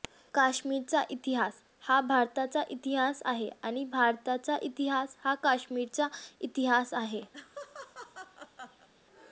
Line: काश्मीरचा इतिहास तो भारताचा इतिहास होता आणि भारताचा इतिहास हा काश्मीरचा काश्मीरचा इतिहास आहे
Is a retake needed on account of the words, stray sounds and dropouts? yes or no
yes